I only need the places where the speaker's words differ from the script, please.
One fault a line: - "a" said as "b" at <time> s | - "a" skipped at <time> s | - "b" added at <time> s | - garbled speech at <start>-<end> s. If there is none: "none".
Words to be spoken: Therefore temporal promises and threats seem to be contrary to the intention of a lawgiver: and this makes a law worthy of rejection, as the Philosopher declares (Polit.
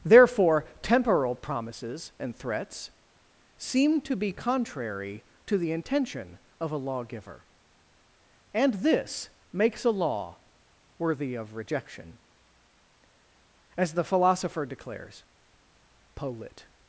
none